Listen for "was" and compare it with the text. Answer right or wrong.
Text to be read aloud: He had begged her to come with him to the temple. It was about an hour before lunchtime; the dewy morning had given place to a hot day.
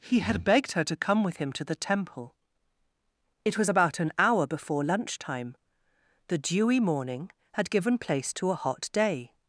right